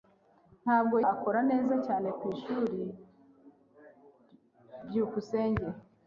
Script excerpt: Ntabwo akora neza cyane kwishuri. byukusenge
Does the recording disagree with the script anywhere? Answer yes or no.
no